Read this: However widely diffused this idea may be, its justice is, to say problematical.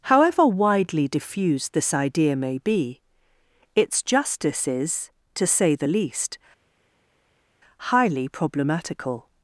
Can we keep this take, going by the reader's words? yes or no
no